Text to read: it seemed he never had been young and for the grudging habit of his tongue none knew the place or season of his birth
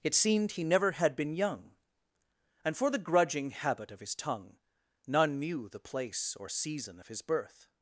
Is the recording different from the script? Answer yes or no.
no